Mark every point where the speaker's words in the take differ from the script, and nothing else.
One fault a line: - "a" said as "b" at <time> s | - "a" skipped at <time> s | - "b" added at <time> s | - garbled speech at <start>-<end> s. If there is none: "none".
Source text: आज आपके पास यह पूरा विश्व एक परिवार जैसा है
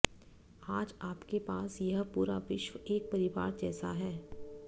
none